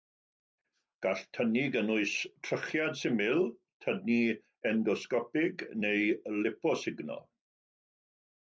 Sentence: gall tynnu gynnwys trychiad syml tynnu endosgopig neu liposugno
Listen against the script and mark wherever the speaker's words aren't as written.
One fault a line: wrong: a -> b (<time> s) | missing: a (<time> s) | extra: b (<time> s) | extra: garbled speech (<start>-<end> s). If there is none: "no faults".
no faults